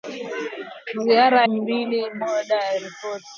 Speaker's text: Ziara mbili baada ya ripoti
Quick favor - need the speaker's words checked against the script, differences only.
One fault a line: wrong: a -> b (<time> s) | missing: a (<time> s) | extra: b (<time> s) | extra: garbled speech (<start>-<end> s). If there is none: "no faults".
no faults